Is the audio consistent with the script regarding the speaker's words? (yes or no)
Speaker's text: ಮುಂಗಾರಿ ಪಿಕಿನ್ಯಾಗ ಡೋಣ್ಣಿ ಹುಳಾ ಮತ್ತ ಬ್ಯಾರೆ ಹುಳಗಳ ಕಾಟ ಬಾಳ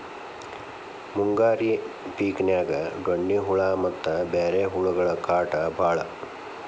yes